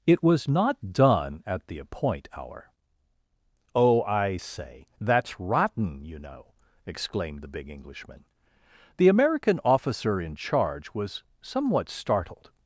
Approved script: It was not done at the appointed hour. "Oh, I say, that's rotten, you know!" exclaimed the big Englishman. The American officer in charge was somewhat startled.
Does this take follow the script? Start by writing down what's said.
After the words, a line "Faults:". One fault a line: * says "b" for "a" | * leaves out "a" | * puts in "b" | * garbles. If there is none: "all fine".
It was not done at the appoint hour. "Oh, I say, that's rotten, you know!" exclaimed the big Englishman. The American officer in charge was somewhat startled.
Faults:
* says "appoint" for "appointed"